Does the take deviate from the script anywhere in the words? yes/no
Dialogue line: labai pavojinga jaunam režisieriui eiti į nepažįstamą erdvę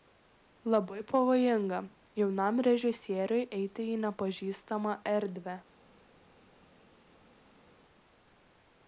no